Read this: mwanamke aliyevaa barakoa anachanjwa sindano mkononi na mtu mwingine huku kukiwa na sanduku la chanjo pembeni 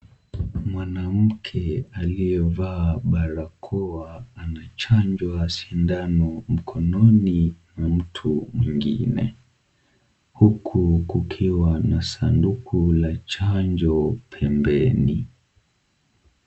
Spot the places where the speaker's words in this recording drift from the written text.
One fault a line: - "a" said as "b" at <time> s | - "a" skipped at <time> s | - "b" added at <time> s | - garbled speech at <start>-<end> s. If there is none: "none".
none